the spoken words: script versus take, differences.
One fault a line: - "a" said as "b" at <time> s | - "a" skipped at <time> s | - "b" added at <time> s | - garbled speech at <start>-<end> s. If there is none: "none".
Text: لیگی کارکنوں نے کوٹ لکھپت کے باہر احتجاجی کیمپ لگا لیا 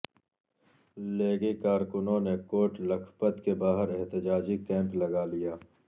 none